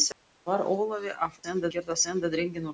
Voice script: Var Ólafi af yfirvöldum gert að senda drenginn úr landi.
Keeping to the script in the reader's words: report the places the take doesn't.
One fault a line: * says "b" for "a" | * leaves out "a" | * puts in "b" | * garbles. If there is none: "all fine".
* says "senda" for "yfirvöldum"